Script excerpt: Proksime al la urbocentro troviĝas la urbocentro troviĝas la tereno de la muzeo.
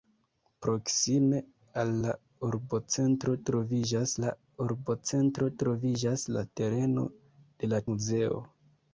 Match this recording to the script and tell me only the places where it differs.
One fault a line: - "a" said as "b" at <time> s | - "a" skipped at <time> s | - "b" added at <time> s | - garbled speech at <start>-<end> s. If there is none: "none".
none